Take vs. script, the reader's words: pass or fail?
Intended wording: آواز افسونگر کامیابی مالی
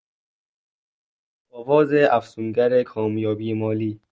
pass